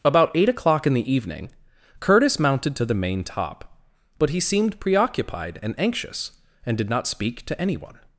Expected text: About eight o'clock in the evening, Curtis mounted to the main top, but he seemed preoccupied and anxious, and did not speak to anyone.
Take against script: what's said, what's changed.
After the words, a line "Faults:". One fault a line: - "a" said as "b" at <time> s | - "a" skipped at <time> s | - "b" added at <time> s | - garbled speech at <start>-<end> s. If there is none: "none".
About eight o'clock in the evening, Curtis mounted to the main top, but he seemed preoccupied and anxious, and did not speak to anyone.
Faults:
none